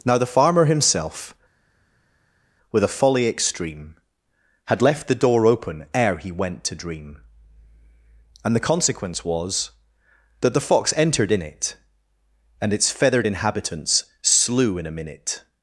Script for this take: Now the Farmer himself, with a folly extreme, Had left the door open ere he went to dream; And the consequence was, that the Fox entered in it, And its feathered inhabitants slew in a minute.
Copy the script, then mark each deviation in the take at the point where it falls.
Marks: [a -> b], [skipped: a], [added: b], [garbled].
Now the Farmer himself, with a folly extreme, Had left the door open ere he went to dream; And the consequence was, that the Fox entered in it, And its feathered inhabitants slew in a minute.